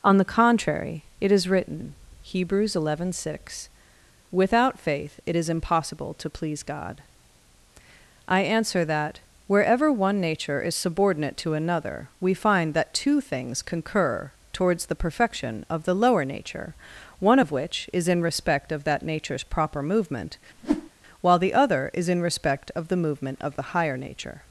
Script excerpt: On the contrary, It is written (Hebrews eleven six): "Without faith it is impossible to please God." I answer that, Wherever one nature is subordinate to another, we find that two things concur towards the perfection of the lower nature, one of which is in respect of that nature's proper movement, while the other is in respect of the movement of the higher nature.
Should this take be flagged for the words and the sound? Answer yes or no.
yes